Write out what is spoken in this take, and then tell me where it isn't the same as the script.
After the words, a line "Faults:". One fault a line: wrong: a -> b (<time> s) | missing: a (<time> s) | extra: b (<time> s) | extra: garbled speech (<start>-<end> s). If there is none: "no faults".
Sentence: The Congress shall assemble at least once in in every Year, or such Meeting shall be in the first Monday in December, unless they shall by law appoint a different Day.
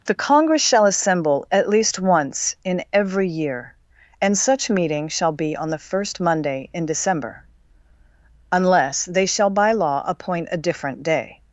The Congress shall assemble at least once in every Year, and such Meeting shall be on the first Monday in December, unless they shall by law appoint a different Day.
Faults:
missing: in (2.8 s)
wrong: or -> and (4.2 s)
wrong: in -> on (5.6 s)